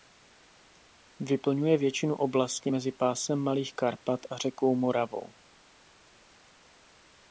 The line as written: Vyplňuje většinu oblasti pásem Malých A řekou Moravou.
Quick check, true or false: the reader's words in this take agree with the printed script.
false